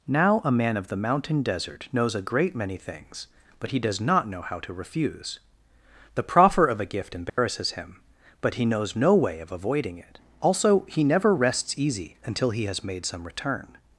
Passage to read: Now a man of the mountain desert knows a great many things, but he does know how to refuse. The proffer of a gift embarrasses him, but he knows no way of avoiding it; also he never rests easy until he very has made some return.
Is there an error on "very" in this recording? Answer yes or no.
yes